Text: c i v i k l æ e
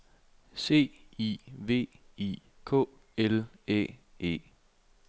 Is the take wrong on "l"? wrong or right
right